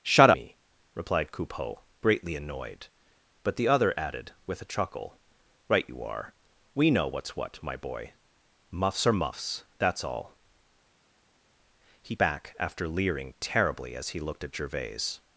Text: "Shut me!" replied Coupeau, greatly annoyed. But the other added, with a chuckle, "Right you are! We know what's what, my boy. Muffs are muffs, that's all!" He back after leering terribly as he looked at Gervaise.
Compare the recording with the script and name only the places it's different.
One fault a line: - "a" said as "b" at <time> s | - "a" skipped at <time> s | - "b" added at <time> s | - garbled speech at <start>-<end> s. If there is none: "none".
none